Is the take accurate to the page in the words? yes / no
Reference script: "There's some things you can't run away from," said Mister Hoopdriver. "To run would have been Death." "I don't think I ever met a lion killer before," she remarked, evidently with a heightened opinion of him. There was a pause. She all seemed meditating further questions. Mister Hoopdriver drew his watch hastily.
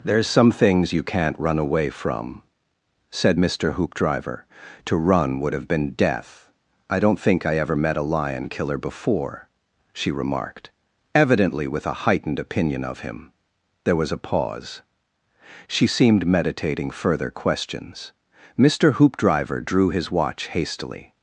no